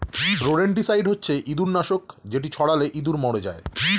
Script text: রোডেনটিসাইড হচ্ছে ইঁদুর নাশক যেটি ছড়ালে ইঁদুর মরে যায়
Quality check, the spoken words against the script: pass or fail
pass